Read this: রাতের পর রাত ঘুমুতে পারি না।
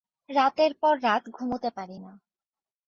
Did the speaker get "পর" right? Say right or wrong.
right